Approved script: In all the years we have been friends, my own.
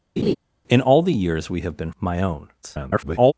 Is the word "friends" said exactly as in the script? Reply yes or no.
no